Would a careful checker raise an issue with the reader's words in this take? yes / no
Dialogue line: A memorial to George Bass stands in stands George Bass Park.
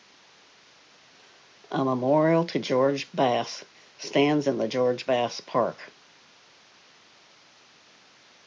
yes